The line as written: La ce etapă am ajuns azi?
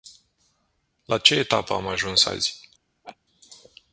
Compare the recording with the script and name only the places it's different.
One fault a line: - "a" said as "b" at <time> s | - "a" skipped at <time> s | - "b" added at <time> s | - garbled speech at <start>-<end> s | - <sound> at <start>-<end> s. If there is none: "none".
- laugh at 3.0-3.2 s